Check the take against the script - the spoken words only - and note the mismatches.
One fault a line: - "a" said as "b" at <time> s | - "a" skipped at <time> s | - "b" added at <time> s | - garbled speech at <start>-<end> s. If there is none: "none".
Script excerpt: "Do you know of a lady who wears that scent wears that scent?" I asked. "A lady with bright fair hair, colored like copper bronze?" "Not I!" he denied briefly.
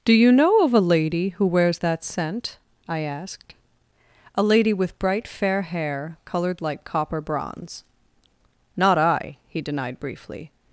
- "wears that scent" skipped at 2.6 s